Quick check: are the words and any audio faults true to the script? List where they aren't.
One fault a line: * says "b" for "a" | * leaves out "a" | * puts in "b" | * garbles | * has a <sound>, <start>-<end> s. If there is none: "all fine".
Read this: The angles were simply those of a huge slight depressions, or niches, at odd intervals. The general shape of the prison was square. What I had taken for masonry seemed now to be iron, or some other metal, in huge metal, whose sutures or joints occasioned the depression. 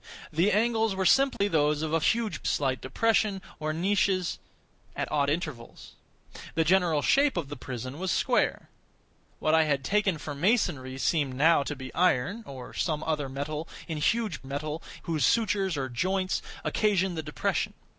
* has a dropout, 1.4-1.4 s